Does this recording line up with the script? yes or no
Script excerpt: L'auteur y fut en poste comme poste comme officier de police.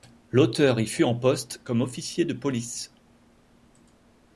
no